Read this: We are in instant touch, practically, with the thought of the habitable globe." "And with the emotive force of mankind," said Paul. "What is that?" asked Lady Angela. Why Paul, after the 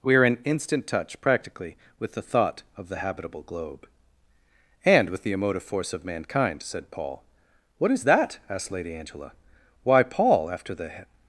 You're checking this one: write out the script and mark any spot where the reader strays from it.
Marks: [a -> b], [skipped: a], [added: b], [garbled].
We are in instant touch, practically, with the thought of the habitable globe." "And with the emotive force of mankind," said Paul. "What is that?" asked Lady Angela. Why Paul, after the